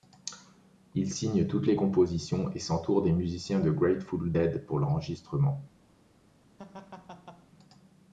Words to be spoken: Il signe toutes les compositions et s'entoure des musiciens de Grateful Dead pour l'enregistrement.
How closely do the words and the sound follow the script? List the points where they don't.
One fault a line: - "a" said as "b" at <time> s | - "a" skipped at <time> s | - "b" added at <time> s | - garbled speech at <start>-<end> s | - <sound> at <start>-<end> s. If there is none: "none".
- laugh at 6.6-7.5 s